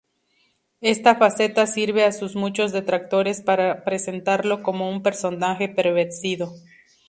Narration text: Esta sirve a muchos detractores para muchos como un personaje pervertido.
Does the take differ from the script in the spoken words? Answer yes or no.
yes